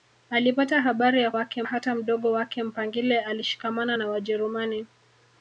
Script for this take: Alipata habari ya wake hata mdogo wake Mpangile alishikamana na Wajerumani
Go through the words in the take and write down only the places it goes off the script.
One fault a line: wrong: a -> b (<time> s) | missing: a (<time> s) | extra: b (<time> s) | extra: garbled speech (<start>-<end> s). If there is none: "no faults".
no faults